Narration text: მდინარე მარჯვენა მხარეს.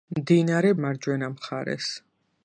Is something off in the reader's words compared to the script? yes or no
no